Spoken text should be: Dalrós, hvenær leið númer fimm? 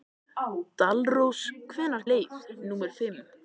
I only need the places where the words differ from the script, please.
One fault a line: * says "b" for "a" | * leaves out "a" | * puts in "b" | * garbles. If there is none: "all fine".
all fine